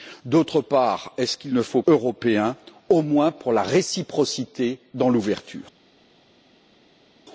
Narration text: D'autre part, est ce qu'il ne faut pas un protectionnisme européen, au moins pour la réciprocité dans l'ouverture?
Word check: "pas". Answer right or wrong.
wrong